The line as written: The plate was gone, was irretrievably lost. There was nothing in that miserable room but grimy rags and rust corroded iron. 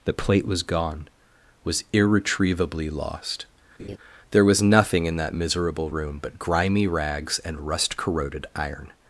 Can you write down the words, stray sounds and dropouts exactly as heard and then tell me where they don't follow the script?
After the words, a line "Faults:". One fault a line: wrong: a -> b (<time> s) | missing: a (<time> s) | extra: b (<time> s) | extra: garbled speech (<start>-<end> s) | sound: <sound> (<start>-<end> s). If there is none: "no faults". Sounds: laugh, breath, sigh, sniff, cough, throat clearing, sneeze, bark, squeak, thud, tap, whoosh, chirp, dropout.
The plate was gone, was irretrievably lost. There was nothing in that miserable room but grimy rags and rust corroded iron.
Faults:
sound: laugh (3.8-4.0 s)